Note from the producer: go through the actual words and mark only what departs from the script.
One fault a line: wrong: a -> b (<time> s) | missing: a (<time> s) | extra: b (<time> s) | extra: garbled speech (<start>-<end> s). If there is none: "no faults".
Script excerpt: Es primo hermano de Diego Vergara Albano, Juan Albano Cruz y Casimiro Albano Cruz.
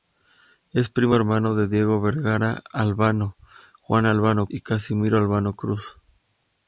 missing: Cruz (4.5 s)